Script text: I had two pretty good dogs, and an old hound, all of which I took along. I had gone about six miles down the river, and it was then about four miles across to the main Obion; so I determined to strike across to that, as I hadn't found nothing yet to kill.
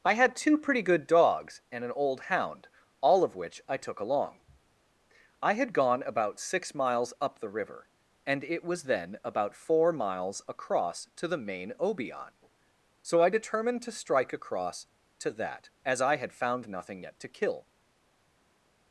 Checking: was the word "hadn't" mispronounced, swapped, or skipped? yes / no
yes